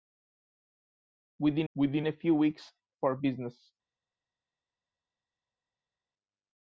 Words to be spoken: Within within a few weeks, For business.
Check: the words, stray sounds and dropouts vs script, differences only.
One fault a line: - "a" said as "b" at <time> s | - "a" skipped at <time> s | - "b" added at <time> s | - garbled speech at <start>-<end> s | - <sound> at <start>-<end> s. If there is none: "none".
none